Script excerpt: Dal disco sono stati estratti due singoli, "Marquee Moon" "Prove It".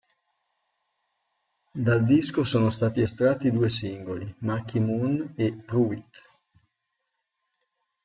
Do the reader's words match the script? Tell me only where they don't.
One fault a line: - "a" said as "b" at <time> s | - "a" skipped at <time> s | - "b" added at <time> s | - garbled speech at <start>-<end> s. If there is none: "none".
- "e" added at 5.3 s